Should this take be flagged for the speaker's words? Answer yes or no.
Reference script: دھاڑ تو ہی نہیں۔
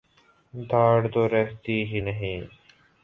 yes